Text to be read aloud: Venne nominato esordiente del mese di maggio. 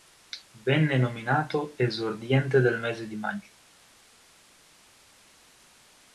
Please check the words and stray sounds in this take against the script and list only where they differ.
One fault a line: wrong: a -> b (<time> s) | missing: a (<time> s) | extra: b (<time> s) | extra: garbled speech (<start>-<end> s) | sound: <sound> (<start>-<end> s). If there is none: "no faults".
no faults